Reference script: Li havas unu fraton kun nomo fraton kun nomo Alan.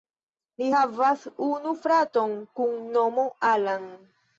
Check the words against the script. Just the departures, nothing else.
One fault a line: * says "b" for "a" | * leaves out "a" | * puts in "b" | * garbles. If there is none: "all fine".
* leaves out "fraton kun nomo"